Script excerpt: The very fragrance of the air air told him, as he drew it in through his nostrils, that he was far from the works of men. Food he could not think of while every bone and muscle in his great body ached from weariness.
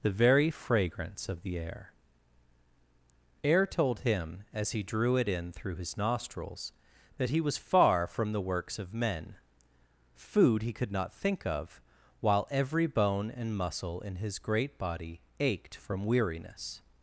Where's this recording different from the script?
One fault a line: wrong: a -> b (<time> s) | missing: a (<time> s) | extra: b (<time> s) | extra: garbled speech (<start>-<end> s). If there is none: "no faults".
no faults